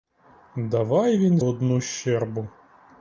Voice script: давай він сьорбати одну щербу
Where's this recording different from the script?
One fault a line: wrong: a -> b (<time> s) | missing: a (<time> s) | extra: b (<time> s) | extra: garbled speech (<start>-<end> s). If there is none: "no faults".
missing: сьорбати (1.4 s)